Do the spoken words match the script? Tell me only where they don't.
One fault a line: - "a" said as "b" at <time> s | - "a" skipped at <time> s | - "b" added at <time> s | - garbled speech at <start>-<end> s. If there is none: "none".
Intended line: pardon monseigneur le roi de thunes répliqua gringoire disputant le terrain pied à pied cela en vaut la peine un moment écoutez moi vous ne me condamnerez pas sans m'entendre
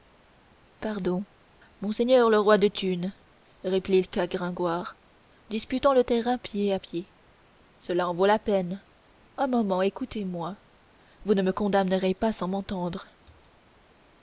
none